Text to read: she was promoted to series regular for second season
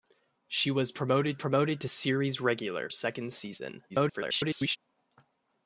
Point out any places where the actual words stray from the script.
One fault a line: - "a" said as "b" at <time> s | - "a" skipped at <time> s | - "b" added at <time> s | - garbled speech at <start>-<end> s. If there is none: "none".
- "promoted" added at 1.4 s
- "for" skipped at 2.9 s
- garbled speech at 3.9-4.8 s